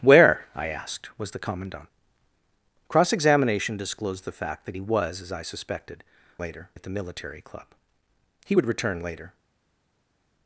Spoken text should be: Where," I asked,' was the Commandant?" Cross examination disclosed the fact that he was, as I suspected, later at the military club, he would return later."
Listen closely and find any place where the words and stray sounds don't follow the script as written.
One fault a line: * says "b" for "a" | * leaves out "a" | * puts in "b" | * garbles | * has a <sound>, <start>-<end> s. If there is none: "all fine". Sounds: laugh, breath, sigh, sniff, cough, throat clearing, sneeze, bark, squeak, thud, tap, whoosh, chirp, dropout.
all fine